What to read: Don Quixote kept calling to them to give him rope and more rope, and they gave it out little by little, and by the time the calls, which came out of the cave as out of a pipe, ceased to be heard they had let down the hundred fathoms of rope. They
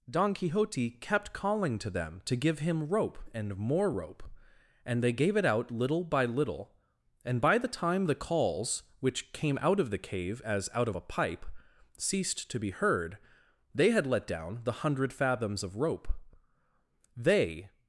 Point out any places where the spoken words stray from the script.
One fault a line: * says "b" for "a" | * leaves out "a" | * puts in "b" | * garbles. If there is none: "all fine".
all fine